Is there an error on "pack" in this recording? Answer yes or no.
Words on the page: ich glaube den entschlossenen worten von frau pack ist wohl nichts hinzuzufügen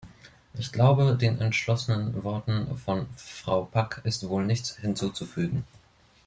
no